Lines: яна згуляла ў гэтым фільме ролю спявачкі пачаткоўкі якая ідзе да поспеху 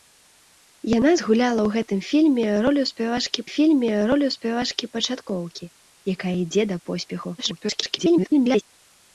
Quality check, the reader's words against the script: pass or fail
fail